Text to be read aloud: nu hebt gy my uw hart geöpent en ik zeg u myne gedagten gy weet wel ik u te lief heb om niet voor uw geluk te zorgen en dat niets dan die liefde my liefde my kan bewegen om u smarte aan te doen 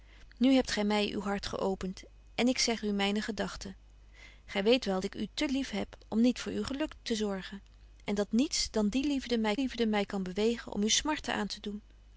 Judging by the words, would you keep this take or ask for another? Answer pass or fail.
pass